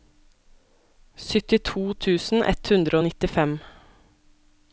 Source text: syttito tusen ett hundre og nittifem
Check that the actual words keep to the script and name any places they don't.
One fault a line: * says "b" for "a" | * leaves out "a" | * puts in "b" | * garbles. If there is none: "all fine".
all fine